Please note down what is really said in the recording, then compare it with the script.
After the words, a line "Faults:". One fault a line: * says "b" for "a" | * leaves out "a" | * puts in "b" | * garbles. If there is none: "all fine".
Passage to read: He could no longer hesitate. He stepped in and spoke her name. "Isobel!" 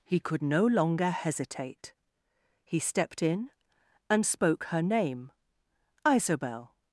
He could no longer hesitate. He stepped in and spoke her name. "Isobel!"
Faults:
all fine